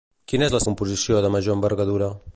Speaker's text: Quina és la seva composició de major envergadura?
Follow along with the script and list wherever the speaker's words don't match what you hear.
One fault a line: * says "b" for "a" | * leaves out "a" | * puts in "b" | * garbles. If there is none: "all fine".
* leaves out "seva"